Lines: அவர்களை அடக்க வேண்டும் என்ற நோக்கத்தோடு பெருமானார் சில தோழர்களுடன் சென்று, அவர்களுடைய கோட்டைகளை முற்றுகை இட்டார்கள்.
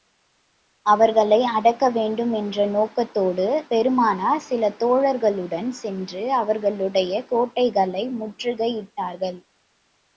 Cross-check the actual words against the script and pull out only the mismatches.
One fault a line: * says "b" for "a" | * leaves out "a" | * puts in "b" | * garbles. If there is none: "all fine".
all fine